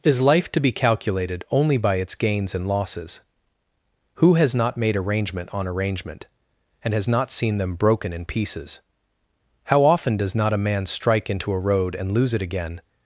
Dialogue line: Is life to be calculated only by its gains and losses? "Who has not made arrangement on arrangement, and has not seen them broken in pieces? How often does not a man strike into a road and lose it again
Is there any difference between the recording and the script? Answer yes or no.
no